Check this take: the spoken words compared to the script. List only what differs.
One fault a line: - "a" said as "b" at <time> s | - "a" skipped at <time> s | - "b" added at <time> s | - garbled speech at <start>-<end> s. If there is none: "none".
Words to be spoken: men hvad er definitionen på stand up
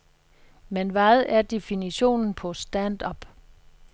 none